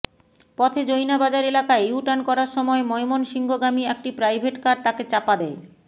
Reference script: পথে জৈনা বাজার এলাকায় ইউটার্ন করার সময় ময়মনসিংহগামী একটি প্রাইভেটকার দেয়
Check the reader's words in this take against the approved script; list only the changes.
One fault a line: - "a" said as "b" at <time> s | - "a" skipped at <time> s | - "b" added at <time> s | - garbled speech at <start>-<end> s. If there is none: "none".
- "তাকে চাপা" added at 4.8 s